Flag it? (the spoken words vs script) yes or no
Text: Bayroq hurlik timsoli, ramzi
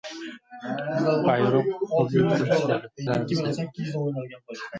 no